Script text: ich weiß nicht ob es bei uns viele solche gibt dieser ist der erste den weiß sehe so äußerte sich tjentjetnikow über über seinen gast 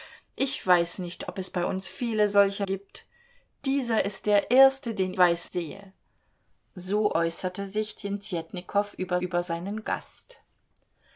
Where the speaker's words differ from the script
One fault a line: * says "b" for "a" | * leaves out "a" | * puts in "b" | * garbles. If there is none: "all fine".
all fine